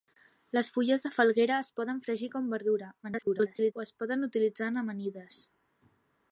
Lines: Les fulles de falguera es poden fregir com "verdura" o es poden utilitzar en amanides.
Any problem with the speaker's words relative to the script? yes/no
yes